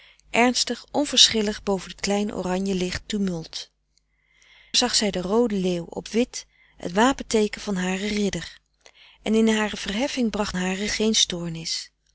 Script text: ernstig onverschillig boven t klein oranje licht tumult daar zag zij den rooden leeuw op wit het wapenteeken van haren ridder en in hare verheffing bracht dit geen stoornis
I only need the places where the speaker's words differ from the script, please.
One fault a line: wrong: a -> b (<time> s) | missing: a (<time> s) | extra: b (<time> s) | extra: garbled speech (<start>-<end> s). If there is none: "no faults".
missing: daar (3.7 s)
wrong: dit -> haren (10.5 s)